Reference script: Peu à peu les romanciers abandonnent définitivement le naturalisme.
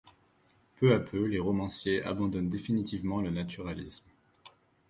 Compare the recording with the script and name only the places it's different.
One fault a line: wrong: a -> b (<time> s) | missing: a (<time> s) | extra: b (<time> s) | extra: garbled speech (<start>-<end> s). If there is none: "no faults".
no faults